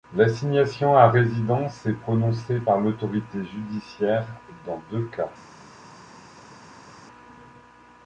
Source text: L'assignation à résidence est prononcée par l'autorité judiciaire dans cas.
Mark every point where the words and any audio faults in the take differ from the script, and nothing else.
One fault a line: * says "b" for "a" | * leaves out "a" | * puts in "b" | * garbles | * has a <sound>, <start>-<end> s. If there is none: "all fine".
* puts in "deux"